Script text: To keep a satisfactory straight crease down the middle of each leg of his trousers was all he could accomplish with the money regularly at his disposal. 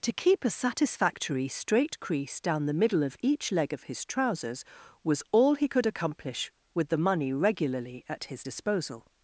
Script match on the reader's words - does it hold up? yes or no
yes